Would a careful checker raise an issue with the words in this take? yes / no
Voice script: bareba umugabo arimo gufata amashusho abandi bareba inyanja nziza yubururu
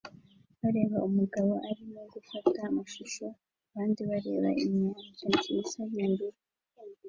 no